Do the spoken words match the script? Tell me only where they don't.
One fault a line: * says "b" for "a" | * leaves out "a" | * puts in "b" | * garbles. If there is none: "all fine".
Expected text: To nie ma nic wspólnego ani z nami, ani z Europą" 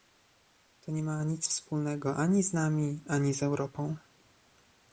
all fine